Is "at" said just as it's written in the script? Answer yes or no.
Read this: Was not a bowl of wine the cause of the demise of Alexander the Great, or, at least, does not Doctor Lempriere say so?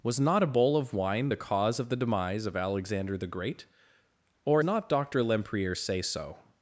no